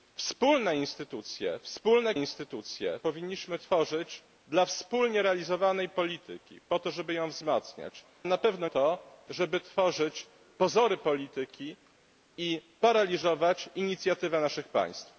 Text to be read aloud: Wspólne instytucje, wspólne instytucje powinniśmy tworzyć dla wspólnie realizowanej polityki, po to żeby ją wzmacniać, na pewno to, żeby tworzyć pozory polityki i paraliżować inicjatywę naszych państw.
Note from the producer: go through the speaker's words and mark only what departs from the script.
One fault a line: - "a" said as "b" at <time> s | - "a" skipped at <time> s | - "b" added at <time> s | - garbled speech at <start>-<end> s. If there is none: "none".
none